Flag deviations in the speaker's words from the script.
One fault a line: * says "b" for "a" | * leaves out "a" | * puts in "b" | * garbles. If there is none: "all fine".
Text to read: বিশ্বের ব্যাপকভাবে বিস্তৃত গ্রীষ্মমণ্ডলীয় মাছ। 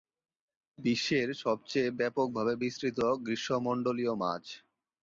* puts in "সবচেয়ে"